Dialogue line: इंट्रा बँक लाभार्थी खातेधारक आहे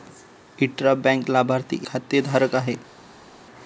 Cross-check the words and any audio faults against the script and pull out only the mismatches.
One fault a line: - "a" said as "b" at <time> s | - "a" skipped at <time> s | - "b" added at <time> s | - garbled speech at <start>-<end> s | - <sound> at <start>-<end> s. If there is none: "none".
none